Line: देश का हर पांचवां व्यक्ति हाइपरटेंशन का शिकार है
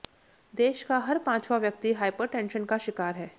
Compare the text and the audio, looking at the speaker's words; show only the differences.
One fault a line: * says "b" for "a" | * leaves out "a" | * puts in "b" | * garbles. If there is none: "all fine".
all fine